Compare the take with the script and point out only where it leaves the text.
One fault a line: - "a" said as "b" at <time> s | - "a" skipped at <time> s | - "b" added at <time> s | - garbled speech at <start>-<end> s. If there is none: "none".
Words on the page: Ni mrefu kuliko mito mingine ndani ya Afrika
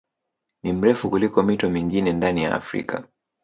none